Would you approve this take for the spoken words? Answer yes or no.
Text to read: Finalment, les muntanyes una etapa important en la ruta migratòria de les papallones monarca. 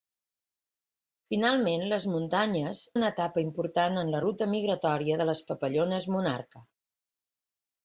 yes